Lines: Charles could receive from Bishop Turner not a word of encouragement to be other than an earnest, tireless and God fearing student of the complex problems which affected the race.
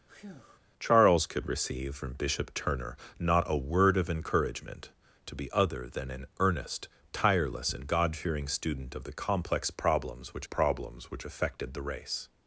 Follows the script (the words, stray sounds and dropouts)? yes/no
no